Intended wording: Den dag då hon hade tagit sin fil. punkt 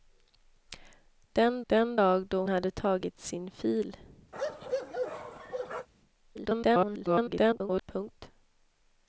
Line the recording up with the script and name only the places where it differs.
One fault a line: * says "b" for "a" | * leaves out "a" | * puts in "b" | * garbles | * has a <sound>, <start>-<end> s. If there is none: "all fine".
* puts in "den"
* leaves out "hon"
* has a bark, 4.3-5.9 s
* garbles